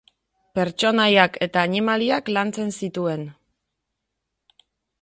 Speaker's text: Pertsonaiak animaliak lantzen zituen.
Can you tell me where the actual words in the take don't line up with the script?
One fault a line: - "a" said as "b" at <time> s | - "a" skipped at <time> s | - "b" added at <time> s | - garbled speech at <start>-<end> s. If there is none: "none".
- "eta" added at 1.5 s